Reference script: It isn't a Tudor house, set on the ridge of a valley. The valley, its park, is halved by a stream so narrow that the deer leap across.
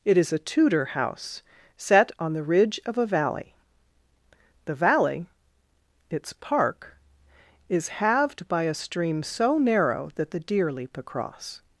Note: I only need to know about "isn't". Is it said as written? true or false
false